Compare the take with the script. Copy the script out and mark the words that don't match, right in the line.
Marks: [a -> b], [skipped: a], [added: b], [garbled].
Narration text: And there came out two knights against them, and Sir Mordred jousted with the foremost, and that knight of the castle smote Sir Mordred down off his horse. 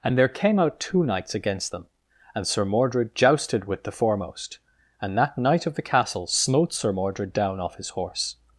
And there came out two knights against them, and Sir Mordred jousted with the foremost, and that knight of the castle smote Sir Mordred down off his horse.